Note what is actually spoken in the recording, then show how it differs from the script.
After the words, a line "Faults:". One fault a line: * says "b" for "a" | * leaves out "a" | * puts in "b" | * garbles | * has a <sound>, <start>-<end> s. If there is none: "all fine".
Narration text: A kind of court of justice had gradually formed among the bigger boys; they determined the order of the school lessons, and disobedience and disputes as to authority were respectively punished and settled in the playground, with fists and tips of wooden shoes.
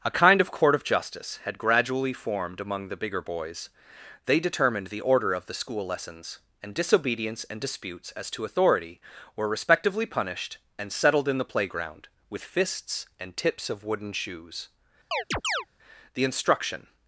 A kind of court of justice had gradually formed among the bigger boys; they determined the order of the school lessons, and disobedience and disputes as to authority were respectively punished and settled in the playground, with fists and tips of wooden shoes. The instruction
Faults:
* has a chirp, 15.1-15.7 s
* puts in "The instruction"